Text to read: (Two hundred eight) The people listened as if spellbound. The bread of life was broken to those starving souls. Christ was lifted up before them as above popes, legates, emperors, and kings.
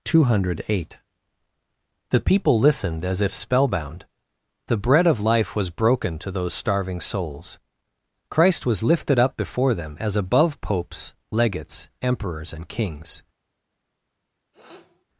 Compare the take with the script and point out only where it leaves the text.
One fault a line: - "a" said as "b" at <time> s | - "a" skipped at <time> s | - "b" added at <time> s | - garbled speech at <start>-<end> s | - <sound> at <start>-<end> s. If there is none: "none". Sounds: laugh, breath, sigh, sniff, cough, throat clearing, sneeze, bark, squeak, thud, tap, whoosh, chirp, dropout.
- sniff at 14.5-15.1 s